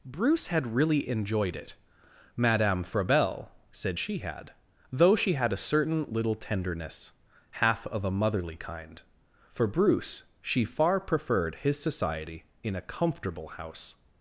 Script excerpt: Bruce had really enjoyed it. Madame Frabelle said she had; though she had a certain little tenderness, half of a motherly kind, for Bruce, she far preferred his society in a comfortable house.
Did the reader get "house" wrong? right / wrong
right